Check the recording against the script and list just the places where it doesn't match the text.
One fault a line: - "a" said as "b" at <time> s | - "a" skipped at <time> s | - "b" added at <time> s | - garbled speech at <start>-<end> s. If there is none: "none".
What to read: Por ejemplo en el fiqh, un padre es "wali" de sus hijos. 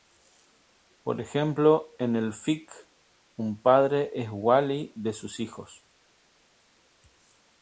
none